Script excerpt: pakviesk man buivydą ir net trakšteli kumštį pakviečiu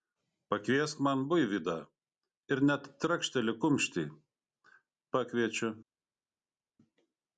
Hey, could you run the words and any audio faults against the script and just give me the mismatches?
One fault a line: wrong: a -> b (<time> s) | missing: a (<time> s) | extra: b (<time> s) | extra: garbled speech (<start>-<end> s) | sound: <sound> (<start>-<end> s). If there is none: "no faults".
no faults